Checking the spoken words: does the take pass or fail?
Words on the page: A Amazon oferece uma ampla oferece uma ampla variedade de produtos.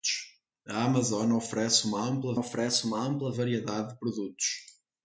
pass